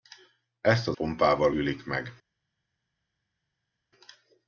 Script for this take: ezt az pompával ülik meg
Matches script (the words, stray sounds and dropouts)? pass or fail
pass